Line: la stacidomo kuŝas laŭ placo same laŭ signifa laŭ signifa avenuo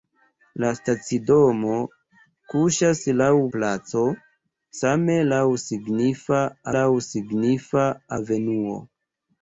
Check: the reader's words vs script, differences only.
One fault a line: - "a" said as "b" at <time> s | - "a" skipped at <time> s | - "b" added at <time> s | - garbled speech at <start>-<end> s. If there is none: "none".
none